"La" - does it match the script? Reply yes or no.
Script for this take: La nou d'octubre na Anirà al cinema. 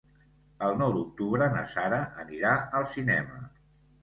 no